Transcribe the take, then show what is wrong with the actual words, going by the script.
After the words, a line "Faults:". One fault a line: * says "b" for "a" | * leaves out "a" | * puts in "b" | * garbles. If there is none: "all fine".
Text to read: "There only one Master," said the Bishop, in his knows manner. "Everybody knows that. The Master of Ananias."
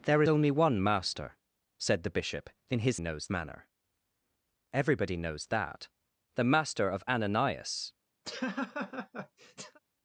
"There only one Master," said the Bishop, in his knows manner. "Everybody knows that. The Master of Ananias."
Faults:
all fine